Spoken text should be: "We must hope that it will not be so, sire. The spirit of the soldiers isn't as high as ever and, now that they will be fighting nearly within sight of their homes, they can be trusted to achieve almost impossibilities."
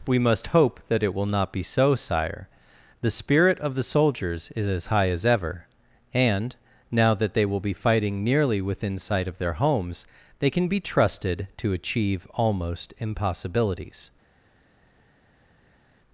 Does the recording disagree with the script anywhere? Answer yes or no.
yes